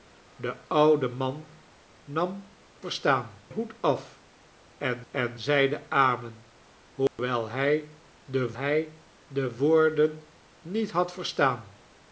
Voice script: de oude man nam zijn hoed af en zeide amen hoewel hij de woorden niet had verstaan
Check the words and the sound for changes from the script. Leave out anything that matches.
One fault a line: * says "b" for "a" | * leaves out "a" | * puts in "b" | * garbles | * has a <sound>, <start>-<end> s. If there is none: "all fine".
* says "verstaan" for "zijn"
* puts in "en"
* has a dropout, 7.1-7.2 s
* puts in "hij de"